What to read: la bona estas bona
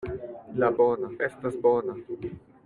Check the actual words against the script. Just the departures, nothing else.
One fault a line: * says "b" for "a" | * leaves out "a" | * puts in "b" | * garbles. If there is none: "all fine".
all fine